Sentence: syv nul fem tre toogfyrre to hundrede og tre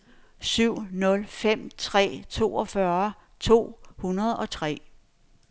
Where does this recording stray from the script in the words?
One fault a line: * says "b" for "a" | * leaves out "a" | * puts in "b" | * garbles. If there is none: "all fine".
all fine